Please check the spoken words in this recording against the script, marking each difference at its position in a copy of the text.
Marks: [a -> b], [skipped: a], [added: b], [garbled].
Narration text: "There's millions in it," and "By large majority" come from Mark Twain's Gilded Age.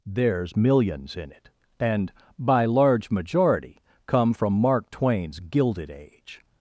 "There's millions in it," and "By large majority" come from Mark Twain's Gilded Age.